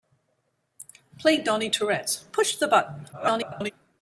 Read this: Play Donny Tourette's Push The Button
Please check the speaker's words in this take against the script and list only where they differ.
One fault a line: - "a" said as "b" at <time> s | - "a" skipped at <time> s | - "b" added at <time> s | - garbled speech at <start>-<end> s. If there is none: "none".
- garbled speech at 3.1-3.7 s